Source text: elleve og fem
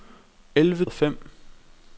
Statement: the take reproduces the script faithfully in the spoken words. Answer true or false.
true